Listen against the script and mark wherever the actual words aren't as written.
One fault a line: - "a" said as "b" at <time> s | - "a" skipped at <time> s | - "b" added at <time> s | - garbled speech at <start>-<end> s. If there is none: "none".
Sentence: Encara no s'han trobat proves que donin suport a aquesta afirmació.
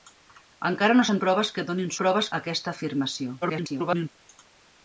- "trobat" skipped at 1.2 s
- "suport" said as "proves" at 2.0 s
- garbled speech at 3.4-4.1 s